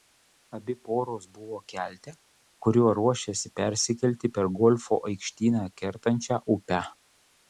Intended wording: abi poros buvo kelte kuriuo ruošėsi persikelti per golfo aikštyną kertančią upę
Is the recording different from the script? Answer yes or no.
no